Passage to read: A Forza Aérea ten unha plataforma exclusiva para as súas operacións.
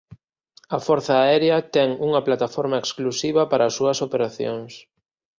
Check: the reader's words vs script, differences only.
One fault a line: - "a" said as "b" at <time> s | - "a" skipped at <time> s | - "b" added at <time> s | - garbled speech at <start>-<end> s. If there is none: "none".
none